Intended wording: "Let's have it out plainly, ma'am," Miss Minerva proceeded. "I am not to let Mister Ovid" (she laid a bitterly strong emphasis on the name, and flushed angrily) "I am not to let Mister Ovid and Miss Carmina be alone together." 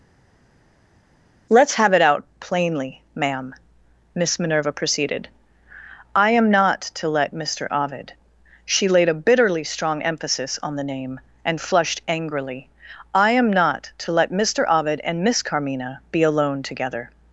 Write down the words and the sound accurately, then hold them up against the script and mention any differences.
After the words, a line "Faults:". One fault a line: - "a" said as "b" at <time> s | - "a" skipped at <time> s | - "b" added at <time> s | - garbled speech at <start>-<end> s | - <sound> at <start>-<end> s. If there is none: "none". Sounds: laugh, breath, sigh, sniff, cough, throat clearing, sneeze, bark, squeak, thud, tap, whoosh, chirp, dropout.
"Let's have it out plainly, ma'am," Miss Minerva proceeded. "I am not to let Mister Ovid" (she laid a bitterly strong emphasis on the name, and flushed angrily) "I am not to let Mister Ovid and Miss Carmina be alone together."
Faults:
none